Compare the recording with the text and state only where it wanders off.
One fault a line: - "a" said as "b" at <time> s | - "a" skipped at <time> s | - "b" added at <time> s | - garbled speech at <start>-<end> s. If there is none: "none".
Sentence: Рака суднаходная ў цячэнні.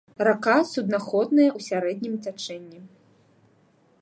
- "сярэднім" added at 1.7 s